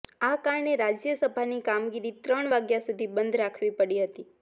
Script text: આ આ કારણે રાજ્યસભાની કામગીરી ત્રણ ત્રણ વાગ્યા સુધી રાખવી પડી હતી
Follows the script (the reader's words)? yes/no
no